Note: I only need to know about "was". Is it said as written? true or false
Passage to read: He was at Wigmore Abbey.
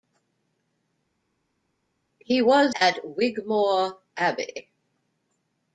true